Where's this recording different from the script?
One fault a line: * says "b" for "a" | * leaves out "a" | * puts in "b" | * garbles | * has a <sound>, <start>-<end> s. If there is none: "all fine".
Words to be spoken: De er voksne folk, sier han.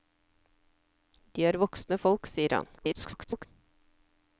* garbles